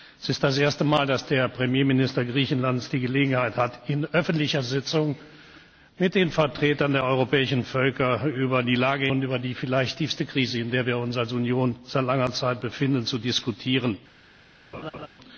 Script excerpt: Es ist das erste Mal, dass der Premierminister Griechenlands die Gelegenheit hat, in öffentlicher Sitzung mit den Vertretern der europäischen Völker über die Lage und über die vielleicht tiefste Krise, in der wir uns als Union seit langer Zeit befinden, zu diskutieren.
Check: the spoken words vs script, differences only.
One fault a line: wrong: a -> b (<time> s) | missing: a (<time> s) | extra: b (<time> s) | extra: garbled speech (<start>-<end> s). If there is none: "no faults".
no faults